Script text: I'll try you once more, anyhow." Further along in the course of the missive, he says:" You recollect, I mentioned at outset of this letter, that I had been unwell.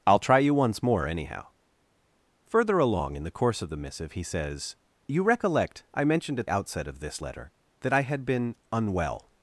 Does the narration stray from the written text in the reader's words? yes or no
no